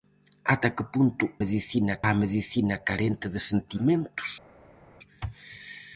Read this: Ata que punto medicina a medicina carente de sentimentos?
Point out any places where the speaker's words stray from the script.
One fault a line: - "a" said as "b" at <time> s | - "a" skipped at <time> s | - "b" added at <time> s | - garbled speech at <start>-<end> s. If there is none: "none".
none